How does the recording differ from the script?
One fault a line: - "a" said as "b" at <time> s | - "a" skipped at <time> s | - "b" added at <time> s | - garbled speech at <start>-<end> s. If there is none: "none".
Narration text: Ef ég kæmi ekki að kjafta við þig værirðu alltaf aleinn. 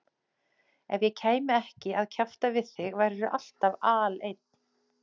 none